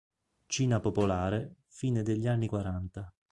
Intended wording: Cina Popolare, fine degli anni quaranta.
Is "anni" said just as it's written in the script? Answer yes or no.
yes